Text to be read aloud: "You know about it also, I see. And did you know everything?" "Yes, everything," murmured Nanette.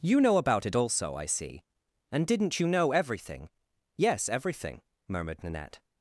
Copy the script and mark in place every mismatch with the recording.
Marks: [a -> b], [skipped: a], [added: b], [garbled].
"You know about it also, I see. And [did -> didn't] you know everything?" "Yes, everything," murmured Nanette.